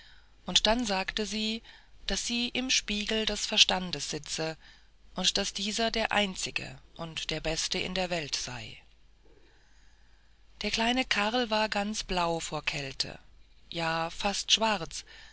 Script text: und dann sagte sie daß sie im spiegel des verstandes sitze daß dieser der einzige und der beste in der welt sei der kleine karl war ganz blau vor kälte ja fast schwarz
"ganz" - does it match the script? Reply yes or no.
yes